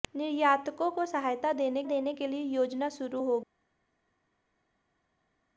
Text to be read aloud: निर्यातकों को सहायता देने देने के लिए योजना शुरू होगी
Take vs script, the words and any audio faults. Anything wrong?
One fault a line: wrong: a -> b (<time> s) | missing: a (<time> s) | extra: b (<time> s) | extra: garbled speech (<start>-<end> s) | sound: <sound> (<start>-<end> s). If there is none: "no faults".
no faults